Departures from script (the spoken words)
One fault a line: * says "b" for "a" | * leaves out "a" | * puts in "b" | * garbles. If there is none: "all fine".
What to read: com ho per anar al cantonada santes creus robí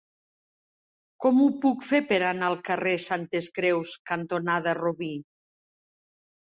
* puts in "puc fer"
* says "carrer" for "cantonada"
* puts in "cantonada"